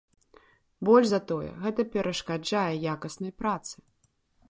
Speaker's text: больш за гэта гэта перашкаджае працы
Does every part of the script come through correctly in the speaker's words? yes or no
no